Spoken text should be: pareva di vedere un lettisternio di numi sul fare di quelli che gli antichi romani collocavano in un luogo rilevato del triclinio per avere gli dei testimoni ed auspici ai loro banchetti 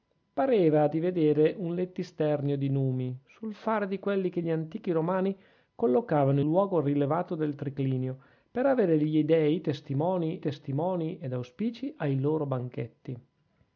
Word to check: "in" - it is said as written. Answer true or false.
false